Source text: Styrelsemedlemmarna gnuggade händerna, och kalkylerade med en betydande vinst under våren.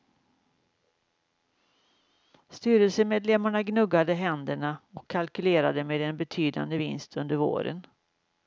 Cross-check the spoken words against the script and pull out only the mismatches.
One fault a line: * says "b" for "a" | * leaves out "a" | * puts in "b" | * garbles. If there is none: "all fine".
all fine